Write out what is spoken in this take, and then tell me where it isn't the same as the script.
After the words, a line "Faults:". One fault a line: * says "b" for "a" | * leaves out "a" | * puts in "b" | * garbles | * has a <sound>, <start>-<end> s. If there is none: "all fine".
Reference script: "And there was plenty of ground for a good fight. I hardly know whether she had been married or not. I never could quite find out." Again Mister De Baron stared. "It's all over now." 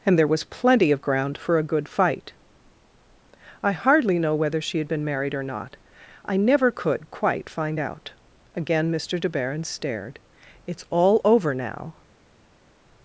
"And there was plenty of ground for a good fight. I hardly know whether she had been married or not. I never could quite find out." Again Mister De Baron stared. "It's all over now."
Faults:
all fine